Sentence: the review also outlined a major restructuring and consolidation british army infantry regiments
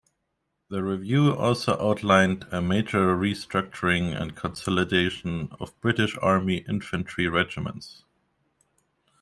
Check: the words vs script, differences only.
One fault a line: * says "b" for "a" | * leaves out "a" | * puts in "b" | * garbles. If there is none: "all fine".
* puts in "of"